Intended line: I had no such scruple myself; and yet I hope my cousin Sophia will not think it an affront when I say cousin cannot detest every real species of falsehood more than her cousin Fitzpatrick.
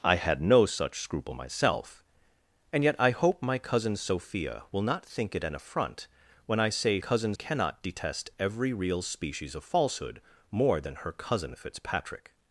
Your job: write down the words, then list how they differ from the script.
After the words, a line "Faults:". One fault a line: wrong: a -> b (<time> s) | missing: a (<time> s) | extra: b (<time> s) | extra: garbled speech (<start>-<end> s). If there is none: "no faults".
I had no such scruple myself; and yet I hope my cousin Sophia will not think it an affront when I say cousin cannot detest every real species of falsehood more than her cousin Fitzpatrick.
Faults:
no faults